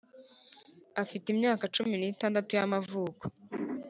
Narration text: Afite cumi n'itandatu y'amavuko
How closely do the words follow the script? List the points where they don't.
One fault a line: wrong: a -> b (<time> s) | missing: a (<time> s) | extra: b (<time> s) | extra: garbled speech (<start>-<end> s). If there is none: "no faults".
extra: imyaka (1.3 s)